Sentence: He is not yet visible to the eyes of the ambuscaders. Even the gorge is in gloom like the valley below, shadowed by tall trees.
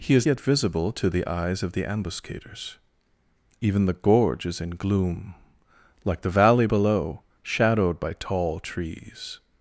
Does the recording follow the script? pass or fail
fail